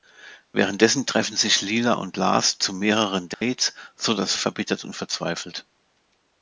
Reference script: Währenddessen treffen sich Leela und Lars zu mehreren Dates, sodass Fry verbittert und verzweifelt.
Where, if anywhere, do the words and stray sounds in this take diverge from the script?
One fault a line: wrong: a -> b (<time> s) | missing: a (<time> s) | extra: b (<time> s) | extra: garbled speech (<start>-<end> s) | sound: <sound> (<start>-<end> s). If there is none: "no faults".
sound: dropout (3.3-3.4 s)
missing: Fry (4.3 s)